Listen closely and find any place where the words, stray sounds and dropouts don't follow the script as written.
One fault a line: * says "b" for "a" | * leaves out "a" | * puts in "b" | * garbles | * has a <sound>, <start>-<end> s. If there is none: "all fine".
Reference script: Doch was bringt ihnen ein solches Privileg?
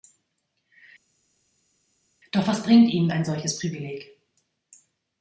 all fine